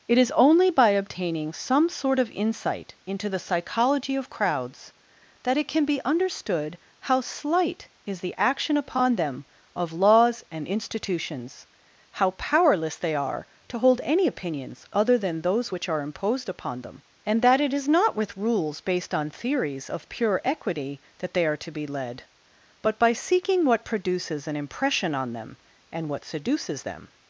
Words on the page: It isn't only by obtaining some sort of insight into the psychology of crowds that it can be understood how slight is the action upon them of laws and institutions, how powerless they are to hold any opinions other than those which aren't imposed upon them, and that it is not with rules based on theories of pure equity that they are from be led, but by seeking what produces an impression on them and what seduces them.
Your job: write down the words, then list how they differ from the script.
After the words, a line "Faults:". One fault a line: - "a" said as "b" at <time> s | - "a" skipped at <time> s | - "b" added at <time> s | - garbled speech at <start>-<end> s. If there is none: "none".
It is only by obtaining some sort of insight into the psychology of crowds that it can be understood how slight is the action upon them of laws and institutions, how powerless they are to hold any opinions other than those which are imposed upon them, and that it is not with rules based on theories of pure equity that they are to be led, but by seeking what produces an impression on them and what seduces them.
Faults:
- "isn't" said as "is" at 0.2 s
- "aren't" said as "are" at 15.9 s
- "from" said as "to" at 21.6 s